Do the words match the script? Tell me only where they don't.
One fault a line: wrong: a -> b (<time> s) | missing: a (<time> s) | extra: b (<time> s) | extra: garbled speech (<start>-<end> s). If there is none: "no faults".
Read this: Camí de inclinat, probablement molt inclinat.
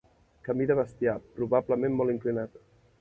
wrong: inclinat -> bestiar (0.8 s)